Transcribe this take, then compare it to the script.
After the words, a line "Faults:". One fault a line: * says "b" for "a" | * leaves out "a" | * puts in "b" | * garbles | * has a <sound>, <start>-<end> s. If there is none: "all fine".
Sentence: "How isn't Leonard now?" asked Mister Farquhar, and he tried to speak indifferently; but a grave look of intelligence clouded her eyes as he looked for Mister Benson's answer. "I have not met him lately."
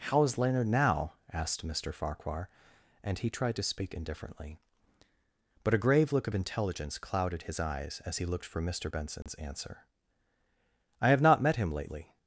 "How is Leonard now?" asked Mister Farquhar, and he tried to speak indifferently; but a grave look of intelligence clouded his eyes as he looked for Mister Benson's answer. "I have not met him lately."
Faults:
* says "is" for "isn't"
* says "his" for "her"
* has a dropout, 9.2-9.3 s